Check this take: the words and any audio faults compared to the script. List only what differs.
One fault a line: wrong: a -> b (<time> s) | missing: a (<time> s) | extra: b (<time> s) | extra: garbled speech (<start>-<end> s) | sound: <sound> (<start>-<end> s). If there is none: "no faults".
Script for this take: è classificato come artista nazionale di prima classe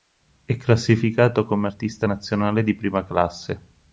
no faults